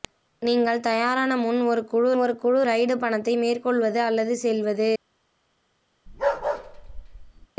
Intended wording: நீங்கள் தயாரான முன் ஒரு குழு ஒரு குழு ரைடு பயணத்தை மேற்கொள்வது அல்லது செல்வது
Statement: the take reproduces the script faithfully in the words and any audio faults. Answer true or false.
false